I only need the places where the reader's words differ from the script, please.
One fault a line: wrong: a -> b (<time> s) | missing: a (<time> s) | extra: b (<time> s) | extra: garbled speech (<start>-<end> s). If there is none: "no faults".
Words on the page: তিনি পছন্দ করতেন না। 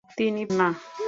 missing: পছন্দ করতেন (0.4 s)